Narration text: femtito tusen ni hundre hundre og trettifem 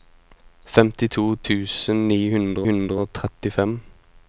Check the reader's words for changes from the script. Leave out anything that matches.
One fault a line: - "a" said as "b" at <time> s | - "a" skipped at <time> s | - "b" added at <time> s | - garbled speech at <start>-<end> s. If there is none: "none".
none